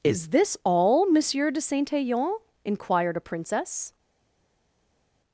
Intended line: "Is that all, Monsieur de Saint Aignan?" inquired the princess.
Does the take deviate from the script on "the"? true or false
true